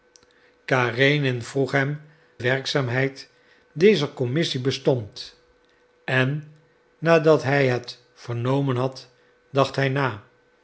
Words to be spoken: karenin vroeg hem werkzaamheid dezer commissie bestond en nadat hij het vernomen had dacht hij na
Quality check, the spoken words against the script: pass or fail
pass